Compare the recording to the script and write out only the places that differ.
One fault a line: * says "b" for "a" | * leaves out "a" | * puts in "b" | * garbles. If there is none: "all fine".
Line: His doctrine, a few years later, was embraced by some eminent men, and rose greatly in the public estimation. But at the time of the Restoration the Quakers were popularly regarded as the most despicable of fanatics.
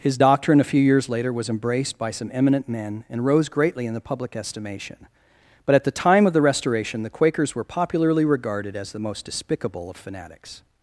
all fine